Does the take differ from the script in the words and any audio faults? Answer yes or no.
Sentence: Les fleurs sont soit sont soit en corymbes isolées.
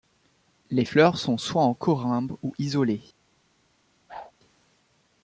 yes